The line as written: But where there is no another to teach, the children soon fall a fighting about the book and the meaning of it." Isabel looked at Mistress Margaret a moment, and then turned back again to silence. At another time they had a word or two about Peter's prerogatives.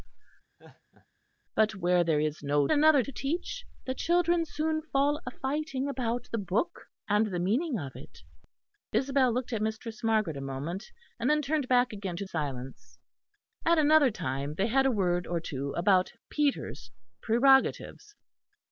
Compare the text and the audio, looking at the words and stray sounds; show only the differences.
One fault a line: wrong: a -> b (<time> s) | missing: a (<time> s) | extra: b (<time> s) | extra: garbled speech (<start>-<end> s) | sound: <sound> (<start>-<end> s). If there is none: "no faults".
sound: laugh (0.6-1.1 s)